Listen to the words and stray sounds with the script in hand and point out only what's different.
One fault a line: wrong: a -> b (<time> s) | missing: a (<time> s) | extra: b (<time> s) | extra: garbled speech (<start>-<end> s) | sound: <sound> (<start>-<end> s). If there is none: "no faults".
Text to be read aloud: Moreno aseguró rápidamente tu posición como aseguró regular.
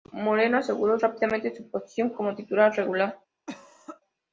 wrong: tu -> su (1.5 s)
wrong: aseguró -> titular (2.4 s)
sound: cough (3.5-4.0 s)